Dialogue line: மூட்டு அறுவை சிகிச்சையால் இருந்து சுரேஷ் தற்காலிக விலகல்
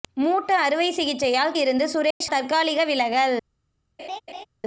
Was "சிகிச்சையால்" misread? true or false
false